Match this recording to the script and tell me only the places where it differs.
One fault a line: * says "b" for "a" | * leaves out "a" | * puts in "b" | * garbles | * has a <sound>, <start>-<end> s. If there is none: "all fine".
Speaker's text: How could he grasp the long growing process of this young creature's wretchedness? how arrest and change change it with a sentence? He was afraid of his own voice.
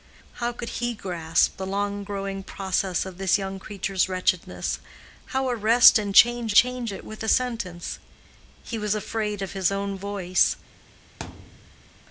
* has a thud, 11.2-12.0 s